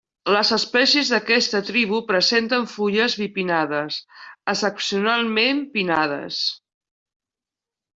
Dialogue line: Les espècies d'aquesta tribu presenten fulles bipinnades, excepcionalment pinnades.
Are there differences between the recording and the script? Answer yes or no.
no